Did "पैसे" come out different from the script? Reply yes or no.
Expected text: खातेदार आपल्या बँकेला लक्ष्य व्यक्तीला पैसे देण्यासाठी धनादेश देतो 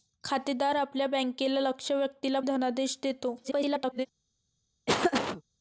yes